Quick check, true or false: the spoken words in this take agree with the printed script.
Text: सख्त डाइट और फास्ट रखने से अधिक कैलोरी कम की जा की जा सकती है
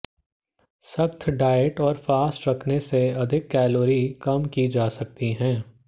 false